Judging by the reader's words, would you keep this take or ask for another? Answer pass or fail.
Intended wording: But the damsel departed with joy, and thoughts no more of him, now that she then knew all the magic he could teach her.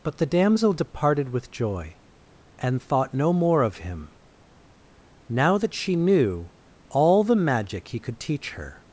fail